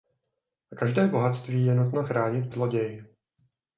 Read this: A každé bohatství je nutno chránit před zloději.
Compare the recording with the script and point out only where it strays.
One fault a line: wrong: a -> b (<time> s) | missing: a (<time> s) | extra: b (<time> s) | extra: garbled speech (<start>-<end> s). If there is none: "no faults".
missing: před (2.5 s)